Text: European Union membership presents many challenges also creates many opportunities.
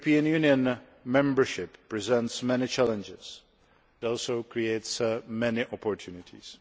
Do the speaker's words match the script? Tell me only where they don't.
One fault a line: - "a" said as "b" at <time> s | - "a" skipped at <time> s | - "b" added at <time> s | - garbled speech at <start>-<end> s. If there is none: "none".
none